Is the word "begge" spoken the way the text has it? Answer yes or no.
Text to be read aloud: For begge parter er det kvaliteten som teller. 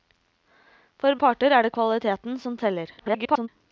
no